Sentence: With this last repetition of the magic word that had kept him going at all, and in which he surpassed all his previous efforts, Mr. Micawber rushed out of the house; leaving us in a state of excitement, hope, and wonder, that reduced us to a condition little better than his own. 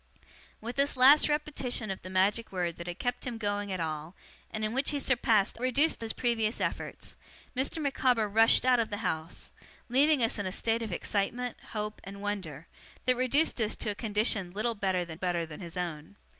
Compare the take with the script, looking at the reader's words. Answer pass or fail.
fail